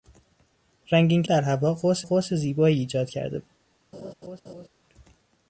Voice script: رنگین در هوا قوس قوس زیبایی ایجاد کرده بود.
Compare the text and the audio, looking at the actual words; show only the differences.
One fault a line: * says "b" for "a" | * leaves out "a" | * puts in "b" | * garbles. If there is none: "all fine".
all fine